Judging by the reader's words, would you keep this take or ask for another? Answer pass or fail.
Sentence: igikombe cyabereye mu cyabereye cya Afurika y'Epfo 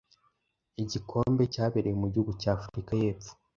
fail